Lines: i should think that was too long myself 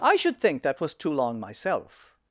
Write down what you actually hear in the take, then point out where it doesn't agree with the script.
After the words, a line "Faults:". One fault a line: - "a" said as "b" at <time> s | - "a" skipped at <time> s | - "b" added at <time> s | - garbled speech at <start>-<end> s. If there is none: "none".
i should think that was too long myself
Faults:
none